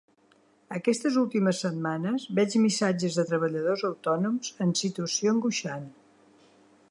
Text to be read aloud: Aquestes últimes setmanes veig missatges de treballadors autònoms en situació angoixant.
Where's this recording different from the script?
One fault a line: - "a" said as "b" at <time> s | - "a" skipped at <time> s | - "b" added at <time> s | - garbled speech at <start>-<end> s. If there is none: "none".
none